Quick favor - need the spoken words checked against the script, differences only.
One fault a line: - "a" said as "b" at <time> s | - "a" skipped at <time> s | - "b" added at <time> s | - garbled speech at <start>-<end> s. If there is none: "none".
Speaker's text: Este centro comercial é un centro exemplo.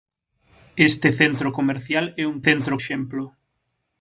none